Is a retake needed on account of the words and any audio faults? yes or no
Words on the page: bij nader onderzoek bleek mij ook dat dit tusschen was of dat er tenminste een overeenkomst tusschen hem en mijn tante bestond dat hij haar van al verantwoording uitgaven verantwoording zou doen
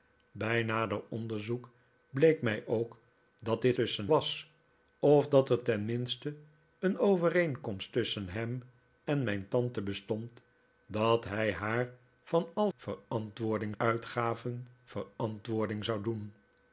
no